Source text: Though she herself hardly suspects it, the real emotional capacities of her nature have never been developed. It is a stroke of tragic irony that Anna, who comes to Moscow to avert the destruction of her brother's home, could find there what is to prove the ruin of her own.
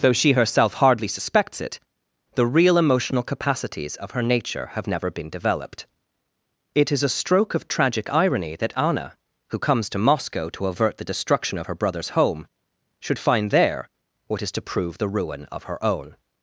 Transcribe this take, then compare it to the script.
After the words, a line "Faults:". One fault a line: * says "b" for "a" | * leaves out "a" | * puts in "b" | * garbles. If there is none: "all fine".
Though she herself hardly suspects it, the real emotional capacities of her nature have never been developed. It is a stroke of tragic irony that Anna, who comes to Moscow to avert the destruction of her brother's home, should find there what is to prove the ruin of her own.
Faults:
* says "should" for "could"